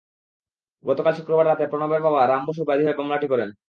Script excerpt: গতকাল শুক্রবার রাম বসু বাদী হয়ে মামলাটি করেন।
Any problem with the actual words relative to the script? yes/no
yes